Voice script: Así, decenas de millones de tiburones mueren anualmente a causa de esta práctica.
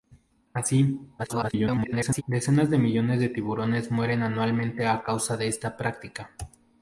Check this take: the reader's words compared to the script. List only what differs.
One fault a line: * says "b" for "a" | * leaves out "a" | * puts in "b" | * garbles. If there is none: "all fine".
* garbles